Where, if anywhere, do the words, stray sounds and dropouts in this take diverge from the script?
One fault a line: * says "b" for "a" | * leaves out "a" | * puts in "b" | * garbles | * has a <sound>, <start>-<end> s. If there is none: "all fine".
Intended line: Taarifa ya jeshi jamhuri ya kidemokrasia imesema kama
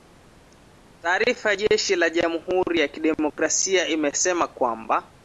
* puts in "la"
* has a dropout, 3.3-3.4 s
* says "kwamba" for "kama"